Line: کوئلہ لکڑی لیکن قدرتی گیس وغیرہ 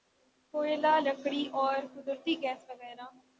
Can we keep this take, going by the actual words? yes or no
no